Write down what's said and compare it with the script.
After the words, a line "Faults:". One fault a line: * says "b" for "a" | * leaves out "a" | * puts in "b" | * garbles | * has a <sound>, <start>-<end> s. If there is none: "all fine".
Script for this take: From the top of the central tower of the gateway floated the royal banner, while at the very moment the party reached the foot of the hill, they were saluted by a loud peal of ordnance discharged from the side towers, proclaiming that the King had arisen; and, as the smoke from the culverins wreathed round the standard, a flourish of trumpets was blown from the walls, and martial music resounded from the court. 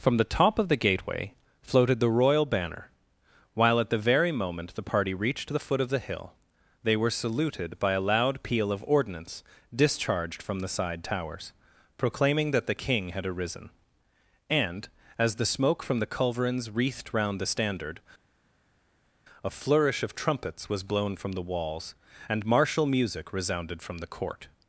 From the top of the gateway floated the royal banner, while at the very moment the party reached the foot of the hill, they were saluted by a loud peal of ordnance discharged from the side towers, proclaiming that the King had arisen; and, as the smoke from the culverins wreathed round the standard, a flourish of trumpets was blown from the walls, and martial music resounded from the court.
Faults:
* leaves out "central tower of the"